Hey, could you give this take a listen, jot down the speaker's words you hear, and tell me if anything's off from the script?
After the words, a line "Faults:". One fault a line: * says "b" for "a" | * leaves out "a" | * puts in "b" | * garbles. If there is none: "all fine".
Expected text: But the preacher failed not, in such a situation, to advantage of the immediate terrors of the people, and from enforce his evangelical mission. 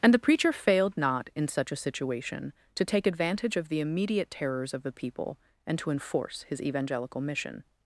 And the preacher failed not, in such a situation, to take advantage of the immediate terrors of the people, and to enforce his evangelical mission.
Faults:
* says "And" for "But"
* puts in "take"
* says "to" for "from"